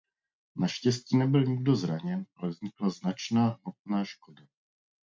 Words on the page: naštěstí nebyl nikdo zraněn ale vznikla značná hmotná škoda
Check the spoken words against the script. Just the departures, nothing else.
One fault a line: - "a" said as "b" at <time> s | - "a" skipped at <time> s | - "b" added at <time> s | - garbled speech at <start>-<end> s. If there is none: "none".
none